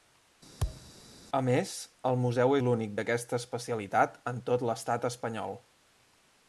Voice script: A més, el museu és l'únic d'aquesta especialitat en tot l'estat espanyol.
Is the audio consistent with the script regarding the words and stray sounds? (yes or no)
no